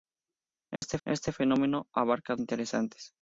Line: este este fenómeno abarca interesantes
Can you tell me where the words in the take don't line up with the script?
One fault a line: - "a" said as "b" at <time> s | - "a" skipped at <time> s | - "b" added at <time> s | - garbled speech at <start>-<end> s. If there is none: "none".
none